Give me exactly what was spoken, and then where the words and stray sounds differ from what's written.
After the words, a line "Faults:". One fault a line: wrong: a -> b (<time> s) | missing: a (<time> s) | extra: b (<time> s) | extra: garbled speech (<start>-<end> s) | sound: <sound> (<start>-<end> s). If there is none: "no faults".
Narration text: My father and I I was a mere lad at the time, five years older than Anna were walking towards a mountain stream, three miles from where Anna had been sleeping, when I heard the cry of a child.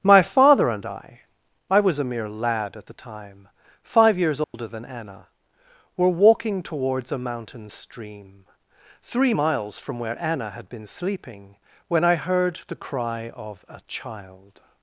My father and I I was a mere lad at the time, five years older than Anna were walking towards a mountain stream, three miles from where Anna had been sleeping, when I heard the cry of a child.
Faults:
sound: dropout (4.4-4.5 s)